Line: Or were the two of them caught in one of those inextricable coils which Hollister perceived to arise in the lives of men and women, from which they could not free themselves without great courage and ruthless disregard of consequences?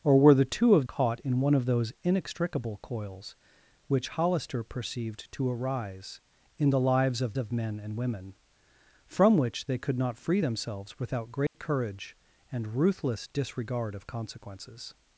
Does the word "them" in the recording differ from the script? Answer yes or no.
yes